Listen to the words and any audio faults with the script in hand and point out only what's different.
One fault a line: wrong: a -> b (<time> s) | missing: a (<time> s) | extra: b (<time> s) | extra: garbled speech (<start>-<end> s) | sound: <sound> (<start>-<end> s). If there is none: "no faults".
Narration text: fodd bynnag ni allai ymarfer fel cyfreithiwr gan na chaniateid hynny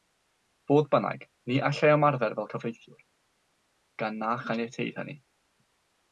no faults